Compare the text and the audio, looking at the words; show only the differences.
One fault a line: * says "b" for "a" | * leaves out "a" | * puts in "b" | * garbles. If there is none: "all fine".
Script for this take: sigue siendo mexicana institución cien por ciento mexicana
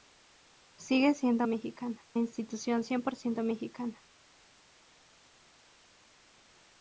all fine